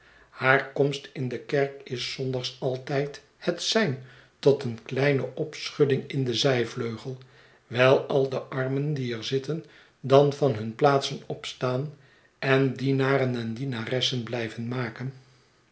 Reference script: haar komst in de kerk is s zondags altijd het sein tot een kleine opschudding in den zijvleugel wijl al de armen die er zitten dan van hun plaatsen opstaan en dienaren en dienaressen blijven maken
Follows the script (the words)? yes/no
yes